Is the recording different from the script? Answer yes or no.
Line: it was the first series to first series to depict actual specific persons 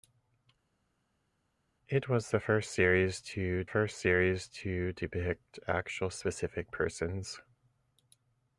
no